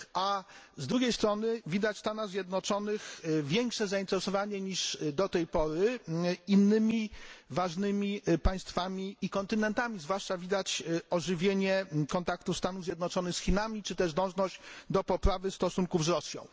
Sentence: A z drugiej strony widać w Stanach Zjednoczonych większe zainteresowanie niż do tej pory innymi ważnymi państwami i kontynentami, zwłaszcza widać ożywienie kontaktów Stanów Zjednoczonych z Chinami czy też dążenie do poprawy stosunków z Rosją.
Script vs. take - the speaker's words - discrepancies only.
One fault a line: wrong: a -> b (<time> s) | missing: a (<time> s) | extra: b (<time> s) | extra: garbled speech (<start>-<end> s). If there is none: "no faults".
no faults